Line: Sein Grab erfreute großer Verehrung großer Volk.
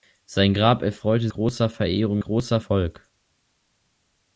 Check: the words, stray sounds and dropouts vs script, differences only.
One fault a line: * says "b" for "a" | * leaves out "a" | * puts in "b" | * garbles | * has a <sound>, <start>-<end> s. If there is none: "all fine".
all fine